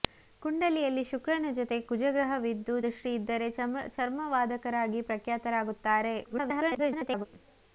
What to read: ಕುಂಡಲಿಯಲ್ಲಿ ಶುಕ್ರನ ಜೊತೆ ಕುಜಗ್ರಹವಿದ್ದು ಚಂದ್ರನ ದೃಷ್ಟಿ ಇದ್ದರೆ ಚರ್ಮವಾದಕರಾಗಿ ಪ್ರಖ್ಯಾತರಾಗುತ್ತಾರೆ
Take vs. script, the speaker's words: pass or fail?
fail